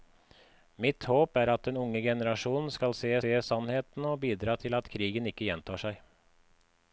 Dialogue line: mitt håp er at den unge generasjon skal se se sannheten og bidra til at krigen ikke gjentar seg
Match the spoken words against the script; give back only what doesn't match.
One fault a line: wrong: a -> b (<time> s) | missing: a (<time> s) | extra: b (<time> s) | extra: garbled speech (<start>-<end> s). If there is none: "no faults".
no faults